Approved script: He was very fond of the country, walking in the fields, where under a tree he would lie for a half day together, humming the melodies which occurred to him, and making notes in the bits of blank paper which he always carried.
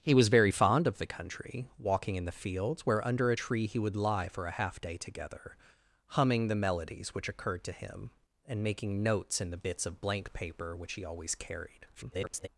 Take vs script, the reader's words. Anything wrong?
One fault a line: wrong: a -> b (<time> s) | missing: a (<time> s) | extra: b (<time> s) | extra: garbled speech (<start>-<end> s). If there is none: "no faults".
extra: garbled speech (11.9-12.5 s)